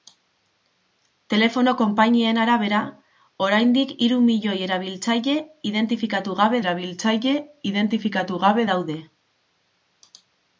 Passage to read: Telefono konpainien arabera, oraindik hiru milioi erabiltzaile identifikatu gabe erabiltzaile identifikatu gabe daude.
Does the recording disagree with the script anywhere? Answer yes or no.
no